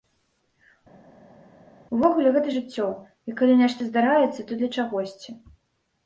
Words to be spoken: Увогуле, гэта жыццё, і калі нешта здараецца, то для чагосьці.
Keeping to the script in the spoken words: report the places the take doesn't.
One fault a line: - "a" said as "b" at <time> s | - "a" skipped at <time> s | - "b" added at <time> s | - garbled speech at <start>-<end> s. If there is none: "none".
none